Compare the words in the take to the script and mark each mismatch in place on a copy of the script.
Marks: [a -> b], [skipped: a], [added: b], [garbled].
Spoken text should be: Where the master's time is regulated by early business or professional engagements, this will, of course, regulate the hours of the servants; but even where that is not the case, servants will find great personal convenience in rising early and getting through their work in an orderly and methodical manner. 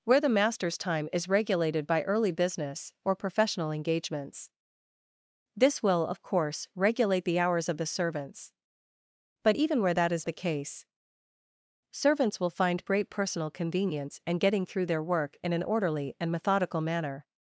Where the master's time is regulated by early business or professional engagements, this will, of course, regulate the hours of the servants; but even where that is [skipped: not] the case, servants will find great personal convenience [skipped: in rising early] and getting through their work in an orderly and methodical manner.